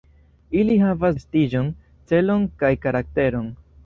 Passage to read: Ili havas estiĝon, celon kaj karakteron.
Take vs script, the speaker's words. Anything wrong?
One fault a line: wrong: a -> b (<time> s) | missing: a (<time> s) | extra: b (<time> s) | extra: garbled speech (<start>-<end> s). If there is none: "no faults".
no faults